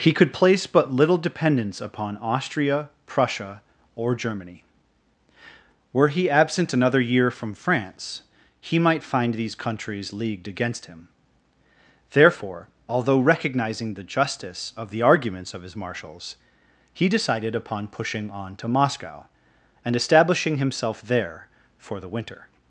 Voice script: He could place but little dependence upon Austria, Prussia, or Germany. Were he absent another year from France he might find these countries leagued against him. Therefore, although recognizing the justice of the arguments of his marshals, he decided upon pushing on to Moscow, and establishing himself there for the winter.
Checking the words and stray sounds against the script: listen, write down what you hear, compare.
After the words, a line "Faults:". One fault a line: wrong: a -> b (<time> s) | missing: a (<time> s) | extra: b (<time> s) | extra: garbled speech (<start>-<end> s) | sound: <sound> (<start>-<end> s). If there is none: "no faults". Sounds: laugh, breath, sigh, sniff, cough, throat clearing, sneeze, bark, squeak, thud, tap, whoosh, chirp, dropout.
He could place but little dependence upon Austria, Prussia, or Germany. Were he absent another year from France he might find these countries leagued against him. Therefore, although recognizing the justice of the arguments of his marshals, he decided upon pushing on to Moscow, and establishing himself there for the winter.
Faults:
no faults